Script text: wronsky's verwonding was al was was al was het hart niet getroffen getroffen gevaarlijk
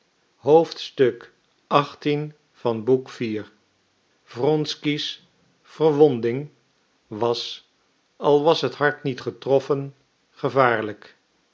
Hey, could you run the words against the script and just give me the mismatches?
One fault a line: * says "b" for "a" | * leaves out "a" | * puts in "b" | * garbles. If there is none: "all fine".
* leaves out "was al was"
* leaves out "getroffen"